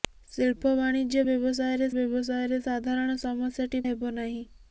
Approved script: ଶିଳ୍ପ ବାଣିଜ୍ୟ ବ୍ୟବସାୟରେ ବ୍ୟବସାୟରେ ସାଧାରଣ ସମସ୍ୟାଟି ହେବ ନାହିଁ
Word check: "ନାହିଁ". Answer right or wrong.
right